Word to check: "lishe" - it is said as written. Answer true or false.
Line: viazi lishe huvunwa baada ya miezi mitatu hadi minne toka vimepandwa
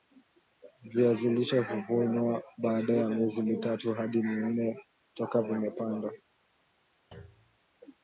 true